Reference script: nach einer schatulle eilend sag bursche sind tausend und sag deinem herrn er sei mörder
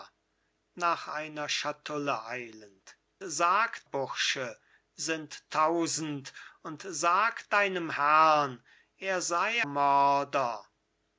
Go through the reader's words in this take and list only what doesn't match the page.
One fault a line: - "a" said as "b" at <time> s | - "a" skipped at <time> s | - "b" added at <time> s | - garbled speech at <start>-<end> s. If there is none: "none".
none